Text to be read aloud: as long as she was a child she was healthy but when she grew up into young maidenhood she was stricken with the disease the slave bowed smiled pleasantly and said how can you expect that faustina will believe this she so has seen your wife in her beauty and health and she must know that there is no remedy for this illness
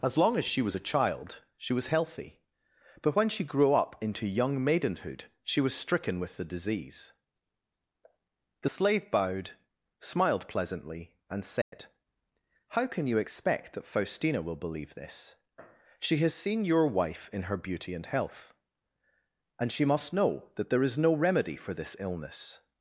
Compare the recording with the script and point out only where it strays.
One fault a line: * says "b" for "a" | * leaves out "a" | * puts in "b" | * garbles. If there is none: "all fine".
* leaves out "so"